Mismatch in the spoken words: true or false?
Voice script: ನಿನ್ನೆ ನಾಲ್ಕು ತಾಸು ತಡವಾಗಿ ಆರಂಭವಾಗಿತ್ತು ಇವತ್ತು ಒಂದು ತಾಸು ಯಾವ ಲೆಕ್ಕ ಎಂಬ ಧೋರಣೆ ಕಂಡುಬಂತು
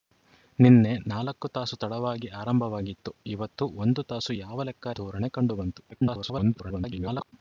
true